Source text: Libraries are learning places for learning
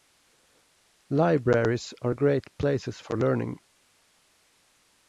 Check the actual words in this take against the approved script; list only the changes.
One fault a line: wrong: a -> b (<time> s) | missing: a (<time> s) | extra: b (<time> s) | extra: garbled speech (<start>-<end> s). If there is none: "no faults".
wrong: learning -> great (2.1 s)